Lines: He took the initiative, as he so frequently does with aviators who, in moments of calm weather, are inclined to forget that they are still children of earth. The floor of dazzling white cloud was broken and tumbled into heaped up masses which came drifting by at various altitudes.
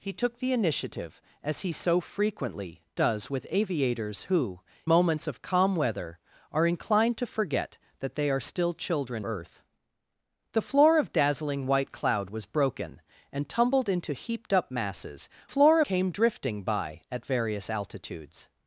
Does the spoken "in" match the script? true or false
false